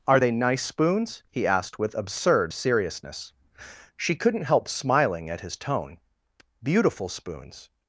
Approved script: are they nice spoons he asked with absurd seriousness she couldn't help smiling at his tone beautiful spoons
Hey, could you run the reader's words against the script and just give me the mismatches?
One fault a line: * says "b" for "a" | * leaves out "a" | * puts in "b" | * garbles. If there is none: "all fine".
all fine